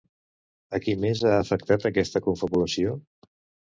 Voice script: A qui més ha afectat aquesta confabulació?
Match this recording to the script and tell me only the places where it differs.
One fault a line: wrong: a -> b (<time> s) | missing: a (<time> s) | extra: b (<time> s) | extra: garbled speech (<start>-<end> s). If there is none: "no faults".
no faults